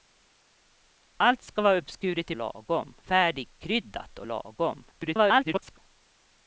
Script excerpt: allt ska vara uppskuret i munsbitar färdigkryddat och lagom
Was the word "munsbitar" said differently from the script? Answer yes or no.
yes